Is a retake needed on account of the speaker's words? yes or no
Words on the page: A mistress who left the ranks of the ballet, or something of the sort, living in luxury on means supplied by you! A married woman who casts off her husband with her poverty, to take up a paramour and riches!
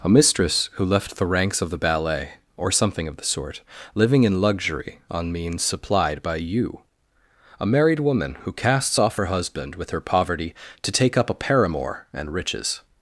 no